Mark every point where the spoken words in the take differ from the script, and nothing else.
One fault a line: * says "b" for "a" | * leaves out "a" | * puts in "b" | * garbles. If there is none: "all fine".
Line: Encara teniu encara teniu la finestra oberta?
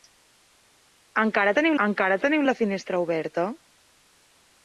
all fine